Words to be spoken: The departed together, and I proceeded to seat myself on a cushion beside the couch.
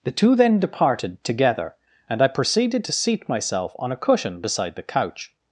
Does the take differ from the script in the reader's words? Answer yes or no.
yes